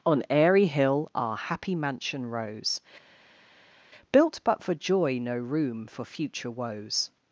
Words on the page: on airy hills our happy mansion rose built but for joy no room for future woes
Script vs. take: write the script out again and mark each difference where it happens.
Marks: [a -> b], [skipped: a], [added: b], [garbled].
on airy [hills -> hill] our happy mansion rose built but for joy no room for future woes